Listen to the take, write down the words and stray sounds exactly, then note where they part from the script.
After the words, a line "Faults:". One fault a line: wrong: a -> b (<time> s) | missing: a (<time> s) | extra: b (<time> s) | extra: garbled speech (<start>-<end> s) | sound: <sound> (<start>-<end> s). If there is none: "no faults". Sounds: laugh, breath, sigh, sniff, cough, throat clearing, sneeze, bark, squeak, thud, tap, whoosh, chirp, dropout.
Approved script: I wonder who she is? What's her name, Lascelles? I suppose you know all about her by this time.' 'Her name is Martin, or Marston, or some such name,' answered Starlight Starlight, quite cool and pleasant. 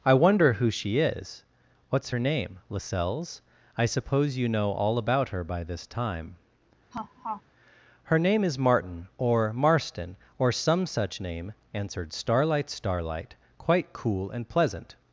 I wonder who she is? What's her name, Lascelles? I suppose you know all about her by this time.' 'Her name is Martin, or Marston, or some such name,' answered Starlight Starlight, quite cool and pleasant.
Faults:
sound: laugh (6.9-7.4 s)